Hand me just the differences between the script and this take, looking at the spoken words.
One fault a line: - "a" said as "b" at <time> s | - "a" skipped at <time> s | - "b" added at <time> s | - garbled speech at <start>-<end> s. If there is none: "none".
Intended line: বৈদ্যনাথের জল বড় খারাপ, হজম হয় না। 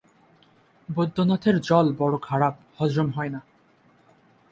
none